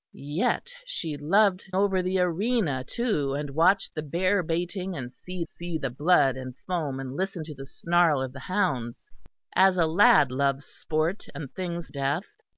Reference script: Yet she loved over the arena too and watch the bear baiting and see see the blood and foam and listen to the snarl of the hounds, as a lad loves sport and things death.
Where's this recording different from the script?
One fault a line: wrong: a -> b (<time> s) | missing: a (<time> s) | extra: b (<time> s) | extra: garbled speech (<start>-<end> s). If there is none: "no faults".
no faults